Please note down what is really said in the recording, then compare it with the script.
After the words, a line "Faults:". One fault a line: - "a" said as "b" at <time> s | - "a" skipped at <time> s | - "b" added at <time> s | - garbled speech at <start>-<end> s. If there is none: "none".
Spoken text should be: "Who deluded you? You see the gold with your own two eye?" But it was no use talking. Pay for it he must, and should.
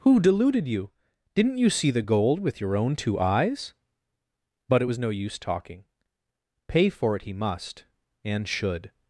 "Who deluded you? Didn't you see the gold with your own two eyes?" But it was no use talking. Pay for it he must, and should.
Faults:
- "Didn't" added at 1.4 s
- "eye" said as "eyes" at 3.2 s